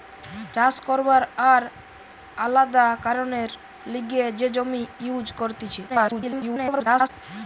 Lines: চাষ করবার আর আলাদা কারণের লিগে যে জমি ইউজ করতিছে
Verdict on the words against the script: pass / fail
fail